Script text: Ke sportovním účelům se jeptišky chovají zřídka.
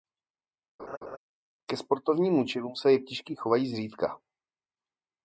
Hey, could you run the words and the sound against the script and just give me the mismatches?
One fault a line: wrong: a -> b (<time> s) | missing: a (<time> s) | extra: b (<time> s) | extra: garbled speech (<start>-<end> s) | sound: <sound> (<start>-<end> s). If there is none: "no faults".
sound: laugh (0.8-1.2 s)